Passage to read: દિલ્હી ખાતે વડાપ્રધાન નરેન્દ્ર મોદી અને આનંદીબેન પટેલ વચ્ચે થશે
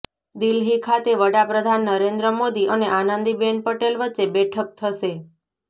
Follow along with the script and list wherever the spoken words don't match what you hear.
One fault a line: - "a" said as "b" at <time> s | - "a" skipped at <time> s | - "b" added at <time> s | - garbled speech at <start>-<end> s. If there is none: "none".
- "બેઠક" added at 4.3 s